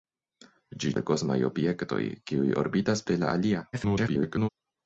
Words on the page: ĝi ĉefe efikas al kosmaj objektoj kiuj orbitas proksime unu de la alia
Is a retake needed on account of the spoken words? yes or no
yes